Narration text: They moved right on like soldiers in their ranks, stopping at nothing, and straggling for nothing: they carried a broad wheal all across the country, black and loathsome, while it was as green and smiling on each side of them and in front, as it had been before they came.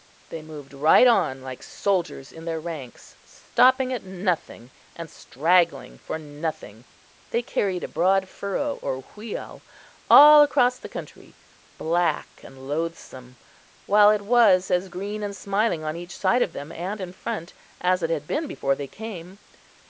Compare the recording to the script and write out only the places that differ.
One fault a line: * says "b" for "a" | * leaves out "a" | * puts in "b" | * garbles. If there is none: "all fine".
* puts in "furrow or"